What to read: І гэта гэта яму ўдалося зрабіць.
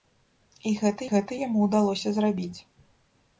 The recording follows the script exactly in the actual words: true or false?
true